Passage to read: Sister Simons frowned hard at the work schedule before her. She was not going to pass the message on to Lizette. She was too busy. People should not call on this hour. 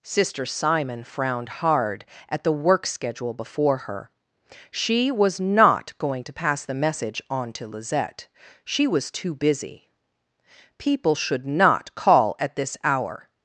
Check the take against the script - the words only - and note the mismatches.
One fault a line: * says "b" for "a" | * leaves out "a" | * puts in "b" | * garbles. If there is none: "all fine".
* says "Simon" for "Simons"
* says "at" for "on"